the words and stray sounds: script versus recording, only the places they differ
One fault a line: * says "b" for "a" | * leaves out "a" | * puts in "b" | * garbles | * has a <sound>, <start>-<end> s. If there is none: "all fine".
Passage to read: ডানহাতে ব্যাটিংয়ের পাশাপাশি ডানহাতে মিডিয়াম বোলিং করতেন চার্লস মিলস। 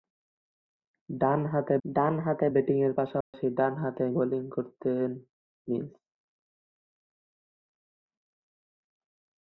* puts in "ডানহাতে"
* has a dropout, 3.2-3.3 s
* leaves out "মিডিয়াম"
* leaves out "চার্লস"